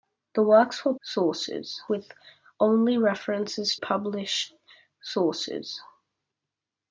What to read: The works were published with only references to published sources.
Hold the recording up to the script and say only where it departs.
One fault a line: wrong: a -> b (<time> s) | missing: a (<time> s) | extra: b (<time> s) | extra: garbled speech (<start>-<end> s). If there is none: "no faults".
wrong: published -> sources (1.0 s)
missing: to (3.8 s)